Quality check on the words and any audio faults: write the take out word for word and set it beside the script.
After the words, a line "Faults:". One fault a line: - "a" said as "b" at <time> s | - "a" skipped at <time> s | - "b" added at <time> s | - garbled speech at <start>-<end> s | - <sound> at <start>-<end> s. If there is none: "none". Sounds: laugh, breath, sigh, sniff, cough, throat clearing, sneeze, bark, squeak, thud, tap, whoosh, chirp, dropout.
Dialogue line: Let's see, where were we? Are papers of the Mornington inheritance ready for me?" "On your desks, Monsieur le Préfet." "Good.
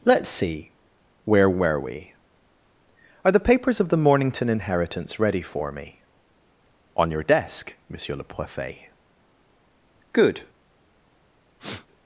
Let's see, where were we? Are the papers of the Mornington inheritance ready for me?" "On your desk, Monsieur le Préfet." "Good.
Faults:
- "the" added at 3.3 s
- "desks" said as "desk" at 7.2 s
- sniff at 11.6-11.9 s